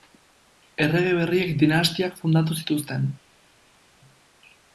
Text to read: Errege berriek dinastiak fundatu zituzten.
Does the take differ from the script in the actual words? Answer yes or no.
no